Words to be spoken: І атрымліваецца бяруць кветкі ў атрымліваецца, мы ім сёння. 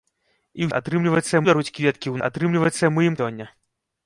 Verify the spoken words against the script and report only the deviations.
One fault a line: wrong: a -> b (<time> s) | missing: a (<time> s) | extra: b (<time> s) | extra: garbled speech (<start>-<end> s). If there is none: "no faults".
no faults